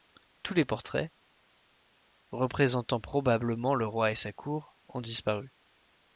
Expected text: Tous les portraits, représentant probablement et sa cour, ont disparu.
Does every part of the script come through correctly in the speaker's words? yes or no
no